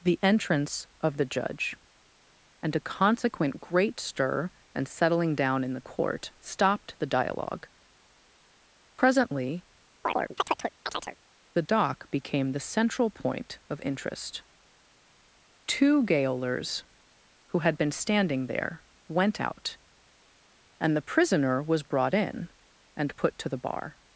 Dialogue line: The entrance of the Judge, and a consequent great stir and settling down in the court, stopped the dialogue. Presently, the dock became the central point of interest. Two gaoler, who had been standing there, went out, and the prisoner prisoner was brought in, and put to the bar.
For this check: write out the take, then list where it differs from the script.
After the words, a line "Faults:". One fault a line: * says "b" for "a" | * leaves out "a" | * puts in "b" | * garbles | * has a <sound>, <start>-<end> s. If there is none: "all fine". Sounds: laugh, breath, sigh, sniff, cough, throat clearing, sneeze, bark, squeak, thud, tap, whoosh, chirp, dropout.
The entrance of the Judge, and a consequent great stir and settling down in the court, stopped the dialogue. Presently, the dock became the central point of interest. Two gaolers, who had been standing there, went out, and the prisoner was brought in, and put to the bar.
Faults:
* has a chirp, 10.0-11.2 s
* says "gaolers" for "gaoler"
* leaves out "prisoner"